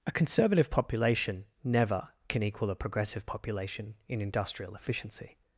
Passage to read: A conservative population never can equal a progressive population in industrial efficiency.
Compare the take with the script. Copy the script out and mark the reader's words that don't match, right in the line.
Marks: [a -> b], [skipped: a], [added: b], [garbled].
A conservative population never can equal a progressive population in industrial efficiency.